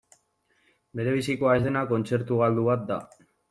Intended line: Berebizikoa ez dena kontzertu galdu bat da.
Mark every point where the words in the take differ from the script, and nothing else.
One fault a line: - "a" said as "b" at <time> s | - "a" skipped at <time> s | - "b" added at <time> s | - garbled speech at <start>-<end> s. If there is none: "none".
none